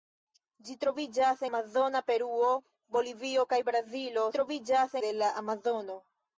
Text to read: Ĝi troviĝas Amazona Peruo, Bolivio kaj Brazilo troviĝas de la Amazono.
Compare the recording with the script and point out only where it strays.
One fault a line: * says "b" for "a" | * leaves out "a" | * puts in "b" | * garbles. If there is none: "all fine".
all fine